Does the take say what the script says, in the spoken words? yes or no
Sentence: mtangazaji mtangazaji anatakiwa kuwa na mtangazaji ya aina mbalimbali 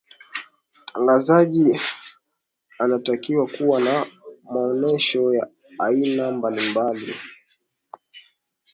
no